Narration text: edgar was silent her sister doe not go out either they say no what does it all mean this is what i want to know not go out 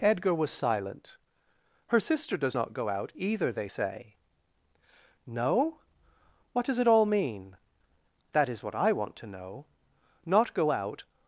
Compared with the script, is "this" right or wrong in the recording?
wrong